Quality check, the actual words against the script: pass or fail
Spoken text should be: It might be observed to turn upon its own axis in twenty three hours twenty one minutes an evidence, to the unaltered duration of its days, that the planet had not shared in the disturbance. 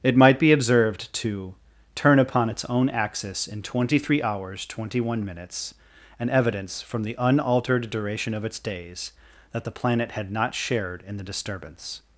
fail